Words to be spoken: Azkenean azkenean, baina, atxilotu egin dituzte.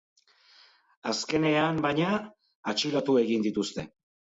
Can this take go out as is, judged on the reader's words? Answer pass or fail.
fail